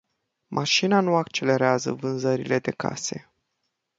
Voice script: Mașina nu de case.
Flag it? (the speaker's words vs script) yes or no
yes